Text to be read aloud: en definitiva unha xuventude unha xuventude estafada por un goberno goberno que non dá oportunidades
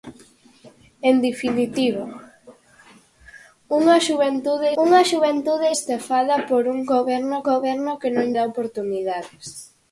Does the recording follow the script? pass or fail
pass